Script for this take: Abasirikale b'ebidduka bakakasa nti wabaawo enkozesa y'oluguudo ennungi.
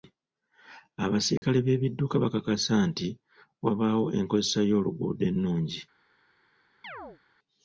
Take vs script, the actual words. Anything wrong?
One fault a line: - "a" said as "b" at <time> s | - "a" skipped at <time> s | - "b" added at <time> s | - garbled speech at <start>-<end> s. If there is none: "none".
none